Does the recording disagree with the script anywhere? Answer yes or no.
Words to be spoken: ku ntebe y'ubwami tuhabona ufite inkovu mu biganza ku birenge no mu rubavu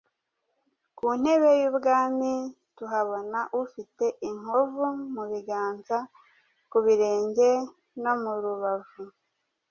no